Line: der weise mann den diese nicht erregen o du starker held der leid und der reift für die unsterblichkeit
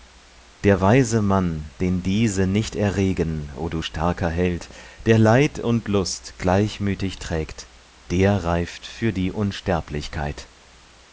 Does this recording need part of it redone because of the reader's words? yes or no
yes